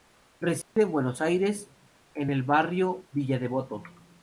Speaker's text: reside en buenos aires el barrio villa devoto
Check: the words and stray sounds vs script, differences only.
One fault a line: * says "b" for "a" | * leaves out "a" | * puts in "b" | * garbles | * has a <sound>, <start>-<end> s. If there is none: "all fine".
* has a dropout, 0.6-0.8 s
* puts in "en"